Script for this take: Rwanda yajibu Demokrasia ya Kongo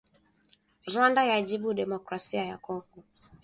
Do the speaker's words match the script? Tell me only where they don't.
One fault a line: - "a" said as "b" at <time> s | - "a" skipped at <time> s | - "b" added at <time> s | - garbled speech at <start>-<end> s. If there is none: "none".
none